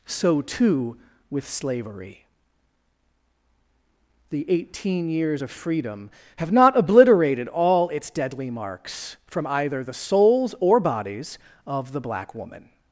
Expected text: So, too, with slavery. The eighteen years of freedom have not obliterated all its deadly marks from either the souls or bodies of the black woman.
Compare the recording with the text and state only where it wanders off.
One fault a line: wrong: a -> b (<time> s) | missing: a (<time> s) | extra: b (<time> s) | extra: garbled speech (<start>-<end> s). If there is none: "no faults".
no faults